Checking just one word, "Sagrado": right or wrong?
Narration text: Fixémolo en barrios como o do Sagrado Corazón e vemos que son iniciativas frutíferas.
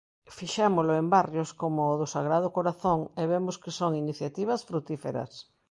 right